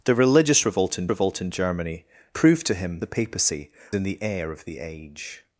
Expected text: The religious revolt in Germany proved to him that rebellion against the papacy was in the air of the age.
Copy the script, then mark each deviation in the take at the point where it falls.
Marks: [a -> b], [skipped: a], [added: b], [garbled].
The religious revolt in [added: revolt in] Germany proved to him [skipped: that rebellion against] the papacy [skipped: was] in the air of the age.